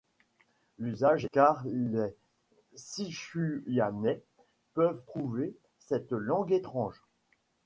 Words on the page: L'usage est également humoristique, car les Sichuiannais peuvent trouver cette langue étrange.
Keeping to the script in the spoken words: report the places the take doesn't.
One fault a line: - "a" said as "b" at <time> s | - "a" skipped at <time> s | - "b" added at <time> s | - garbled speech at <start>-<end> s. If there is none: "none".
- "est également humoristique" skipped at 1.2 s